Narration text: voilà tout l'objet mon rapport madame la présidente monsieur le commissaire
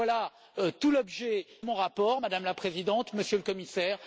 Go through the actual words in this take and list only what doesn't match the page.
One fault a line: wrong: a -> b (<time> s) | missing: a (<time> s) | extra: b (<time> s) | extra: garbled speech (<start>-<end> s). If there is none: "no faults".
no faults